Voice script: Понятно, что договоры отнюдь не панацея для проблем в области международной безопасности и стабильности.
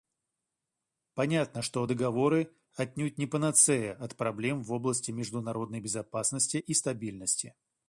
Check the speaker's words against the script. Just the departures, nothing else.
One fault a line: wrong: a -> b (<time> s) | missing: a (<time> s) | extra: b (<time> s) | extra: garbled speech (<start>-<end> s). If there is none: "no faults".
wrong: для -> от (3.9 s)